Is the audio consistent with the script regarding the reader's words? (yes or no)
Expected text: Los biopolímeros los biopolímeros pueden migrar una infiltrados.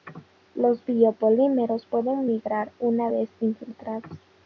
no